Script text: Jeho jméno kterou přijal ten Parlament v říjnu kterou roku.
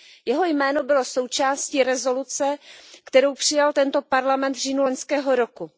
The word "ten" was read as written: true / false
false